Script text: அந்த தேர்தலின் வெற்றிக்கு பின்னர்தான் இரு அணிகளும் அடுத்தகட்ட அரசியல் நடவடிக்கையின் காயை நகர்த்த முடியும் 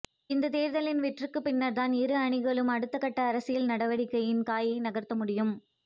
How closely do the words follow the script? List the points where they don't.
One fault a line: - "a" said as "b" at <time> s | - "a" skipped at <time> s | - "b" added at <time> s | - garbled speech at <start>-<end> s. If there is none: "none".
- "அந்த" said as "இந்த" at 0.3 s